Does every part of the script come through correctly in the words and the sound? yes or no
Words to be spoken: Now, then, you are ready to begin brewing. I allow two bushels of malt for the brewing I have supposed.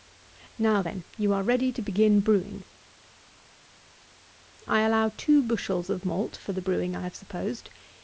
yes